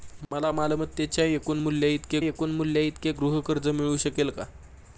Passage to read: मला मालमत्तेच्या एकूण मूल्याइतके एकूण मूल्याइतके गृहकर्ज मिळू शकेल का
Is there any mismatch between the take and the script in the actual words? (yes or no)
no